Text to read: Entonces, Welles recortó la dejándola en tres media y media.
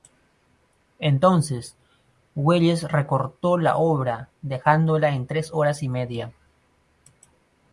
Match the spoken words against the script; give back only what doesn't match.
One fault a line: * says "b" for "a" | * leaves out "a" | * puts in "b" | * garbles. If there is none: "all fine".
* puts in "obra"
* says "horas" for "media"